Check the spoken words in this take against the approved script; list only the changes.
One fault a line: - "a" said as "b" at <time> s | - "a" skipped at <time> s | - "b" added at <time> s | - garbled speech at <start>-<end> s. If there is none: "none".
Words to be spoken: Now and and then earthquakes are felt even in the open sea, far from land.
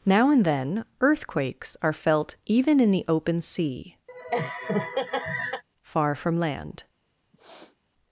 - "and" skipped at 0.4 s